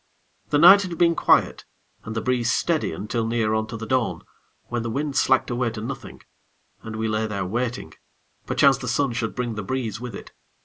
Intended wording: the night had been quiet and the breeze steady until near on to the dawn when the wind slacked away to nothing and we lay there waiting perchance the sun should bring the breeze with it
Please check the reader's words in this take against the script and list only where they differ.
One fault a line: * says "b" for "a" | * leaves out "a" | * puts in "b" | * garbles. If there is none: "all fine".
all fine